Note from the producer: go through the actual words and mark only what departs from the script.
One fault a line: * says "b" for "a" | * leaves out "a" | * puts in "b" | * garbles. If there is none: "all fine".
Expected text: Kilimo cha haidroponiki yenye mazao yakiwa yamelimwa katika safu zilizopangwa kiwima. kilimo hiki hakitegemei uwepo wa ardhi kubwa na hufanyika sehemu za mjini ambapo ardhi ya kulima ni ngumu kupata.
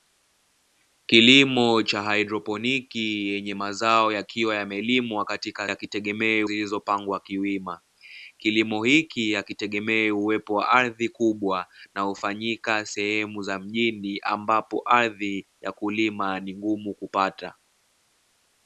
* says "hakitegemei" for "safu"